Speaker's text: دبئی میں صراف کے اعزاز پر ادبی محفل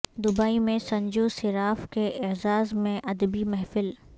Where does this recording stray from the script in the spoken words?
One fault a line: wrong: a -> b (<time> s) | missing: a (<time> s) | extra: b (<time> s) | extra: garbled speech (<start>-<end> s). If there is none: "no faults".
extra: سنجو (0.8 s)
wrong: پر -> میں (2.7 s)